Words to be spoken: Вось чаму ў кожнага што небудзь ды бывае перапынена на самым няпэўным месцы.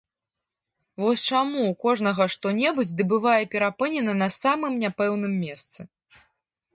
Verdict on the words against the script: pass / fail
pass